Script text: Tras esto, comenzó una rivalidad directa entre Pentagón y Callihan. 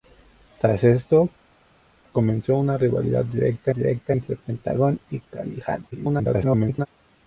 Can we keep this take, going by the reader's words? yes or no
no